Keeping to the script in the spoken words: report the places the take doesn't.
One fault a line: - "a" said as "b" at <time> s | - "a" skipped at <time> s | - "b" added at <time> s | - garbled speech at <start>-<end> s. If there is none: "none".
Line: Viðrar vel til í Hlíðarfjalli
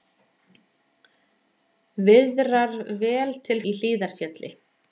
none